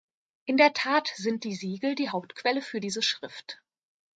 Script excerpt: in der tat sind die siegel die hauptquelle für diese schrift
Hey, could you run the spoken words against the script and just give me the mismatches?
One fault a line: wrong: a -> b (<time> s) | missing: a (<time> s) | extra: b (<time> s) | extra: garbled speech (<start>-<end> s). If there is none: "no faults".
no faults